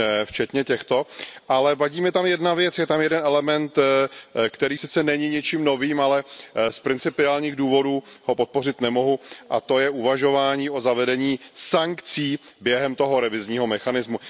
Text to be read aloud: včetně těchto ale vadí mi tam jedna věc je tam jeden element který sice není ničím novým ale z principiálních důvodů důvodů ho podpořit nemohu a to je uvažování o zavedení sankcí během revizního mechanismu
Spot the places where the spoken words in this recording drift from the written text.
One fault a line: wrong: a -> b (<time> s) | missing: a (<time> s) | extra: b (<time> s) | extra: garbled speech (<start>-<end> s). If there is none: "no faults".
missing: důvodů (8.0 s)
extra: toho (12.9 s)